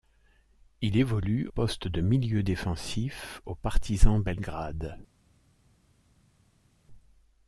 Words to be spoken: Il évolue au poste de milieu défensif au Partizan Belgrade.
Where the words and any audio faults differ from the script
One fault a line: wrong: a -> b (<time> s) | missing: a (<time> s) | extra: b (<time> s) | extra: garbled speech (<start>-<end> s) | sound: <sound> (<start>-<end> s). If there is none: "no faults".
missing: au (1.5 s)